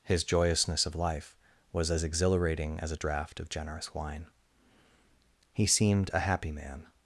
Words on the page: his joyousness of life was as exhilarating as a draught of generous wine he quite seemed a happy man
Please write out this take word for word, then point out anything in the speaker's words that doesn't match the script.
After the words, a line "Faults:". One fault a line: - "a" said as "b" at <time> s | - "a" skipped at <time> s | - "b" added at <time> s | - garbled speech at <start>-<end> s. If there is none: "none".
his joyousness of life was as exhilarating as a draught of generous wine he seemed a happy man
Faults:
- "quite" skipped at 5.7 s